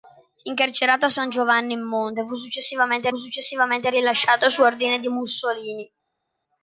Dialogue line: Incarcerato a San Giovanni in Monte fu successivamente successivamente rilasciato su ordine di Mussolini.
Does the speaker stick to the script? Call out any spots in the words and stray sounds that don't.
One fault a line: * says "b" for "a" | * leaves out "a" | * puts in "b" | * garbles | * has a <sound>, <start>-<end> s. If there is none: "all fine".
all fine